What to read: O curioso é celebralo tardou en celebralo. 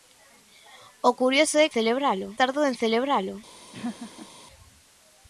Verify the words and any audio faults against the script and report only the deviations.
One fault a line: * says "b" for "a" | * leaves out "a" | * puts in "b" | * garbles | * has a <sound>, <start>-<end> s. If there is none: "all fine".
* has a laugh, 3.7-4.3 s